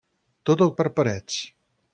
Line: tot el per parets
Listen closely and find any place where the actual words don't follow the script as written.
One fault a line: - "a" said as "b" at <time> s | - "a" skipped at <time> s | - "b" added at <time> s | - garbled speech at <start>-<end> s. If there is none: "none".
none